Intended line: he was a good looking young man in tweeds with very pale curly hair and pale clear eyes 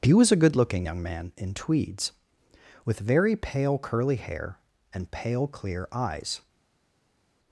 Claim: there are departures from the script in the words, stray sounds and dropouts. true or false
false